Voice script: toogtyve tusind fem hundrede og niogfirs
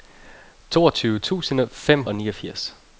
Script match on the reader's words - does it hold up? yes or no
no